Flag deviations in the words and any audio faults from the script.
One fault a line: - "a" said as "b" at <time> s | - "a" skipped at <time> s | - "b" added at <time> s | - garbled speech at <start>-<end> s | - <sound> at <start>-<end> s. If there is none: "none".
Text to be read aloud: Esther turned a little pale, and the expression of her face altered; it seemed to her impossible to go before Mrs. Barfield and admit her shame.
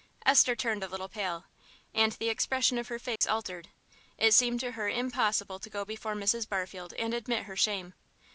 - dropout at 3.2-3.2 s